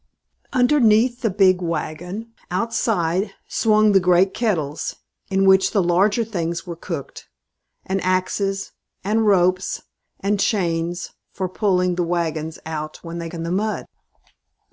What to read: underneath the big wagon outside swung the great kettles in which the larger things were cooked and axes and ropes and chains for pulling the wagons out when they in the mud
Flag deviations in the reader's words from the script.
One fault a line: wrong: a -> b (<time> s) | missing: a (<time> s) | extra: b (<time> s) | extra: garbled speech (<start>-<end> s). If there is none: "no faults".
no faults